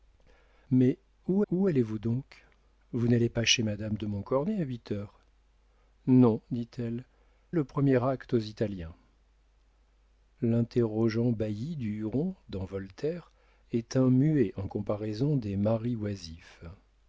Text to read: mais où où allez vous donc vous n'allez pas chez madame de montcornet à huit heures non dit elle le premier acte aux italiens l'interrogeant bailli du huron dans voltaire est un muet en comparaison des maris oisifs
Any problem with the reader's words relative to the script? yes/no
no